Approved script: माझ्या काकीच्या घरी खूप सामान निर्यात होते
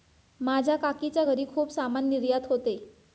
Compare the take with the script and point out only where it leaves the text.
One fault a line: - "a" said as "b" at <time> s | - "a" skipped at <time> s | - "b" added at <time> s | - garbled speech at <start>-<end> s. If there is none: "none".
none